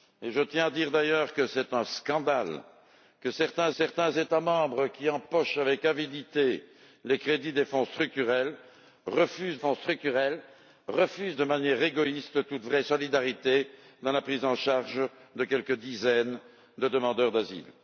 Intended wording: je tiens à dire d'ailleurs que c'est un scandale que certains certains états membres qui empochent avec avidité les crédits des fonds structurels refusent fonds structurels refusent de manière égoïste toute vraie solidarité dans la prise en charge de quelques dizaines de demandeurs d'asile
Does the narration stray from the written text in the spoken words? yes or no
no